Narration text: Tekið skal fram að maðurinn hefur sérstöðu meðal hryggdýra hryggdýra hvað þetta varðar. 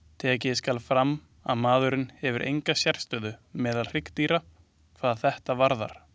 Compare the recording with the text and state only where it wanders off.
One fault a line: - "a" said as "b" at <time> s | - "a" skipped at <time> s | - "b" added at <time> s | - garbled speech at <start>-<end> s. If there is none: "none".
- "enga" added at 2.5 s
- "hryggdýra" skipped at 4.4 s